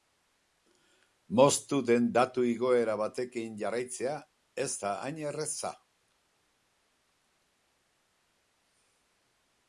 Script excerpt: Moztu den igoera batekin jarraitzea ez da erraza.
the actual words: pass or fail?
fail